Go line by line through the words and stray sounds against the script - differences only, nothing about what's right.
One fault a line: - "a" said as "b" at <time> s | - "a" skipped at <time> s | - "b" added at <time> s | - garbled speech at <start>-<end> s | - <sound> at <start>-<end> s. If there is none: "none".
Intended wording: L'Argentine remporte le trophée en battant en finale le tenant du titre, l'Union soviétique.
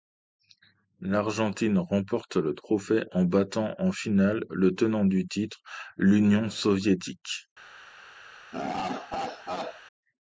- laugh at 8.5-9.8 s